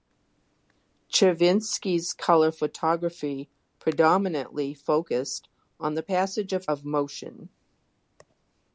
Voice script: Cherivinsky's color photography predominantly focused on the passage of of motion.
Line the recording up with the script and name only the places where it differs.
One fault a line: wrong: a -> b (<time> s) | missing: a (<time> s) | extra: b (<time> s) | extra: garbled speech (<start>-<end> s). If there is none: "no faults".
no faults